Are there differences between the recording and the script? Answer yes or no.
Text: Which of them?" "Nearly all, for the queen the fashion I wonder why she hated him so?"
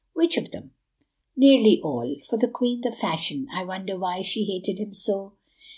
no